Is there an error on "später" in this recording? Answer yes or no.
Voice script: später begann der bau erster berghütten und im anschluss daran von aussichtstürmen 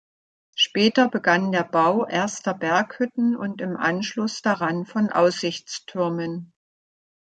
no